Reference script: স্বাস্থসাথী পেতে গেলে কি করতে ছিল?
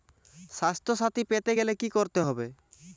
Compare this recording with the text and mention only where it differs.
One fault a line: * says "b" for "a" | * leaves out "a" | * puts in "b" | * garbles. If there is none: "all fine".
* says "হবে" for "ছিল"